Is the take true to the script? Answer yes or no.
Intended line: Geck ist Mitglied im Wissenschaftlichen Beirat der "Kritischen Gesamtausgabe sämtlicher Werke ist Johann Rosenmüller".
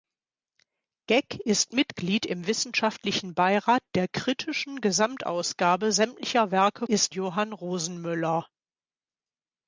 yes